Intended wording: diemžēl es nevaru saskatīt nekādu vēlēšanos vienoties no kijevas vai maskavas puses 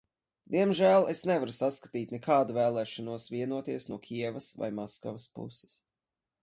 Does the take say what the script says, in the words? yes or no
yes